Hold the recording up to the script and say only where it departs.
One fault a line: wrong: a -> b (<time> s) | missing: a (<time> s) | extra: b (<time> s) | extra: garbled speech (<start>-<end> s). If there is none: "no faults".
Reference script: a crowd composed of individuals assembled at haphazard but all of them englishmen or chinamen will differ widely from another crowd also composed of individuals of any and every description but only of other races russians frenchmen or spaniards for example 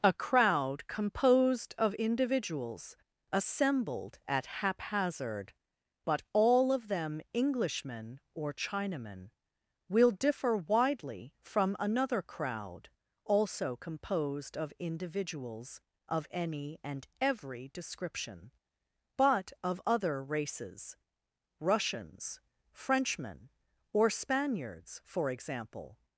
missing: only (19.5 s)